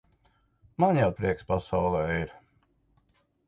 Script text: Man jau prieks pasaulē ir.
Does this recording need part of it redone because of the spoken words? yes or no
no